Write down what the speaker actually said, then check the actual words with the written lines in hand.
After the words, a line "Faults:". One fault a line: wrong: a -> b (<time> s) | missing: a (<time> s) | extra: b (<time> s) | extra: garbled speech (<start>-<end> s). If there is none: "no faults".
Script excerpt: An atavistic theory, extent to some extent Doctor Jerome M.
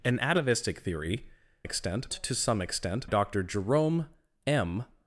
An atavistic theory, extent to some extent Doctor Jerome M.
Faults:
no faults